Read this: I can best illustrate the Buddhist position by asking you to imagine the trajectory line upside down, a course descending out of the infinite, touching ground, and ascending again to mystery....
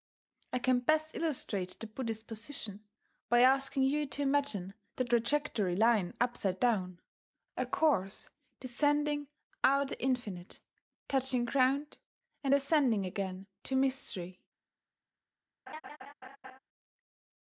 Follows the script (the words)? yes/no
no